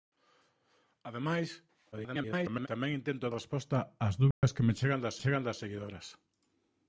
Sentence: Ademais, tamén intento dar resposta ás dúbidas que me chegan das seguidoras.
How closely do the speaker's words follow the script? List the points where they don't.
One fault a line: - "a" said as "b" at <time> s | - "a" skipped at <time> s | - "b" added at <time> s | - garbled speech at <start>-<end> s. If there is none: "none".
- garbled speech at 1.9-2.7 s
- "dar" skipped at 3.3 s
- "chegan das" added at 5.2 s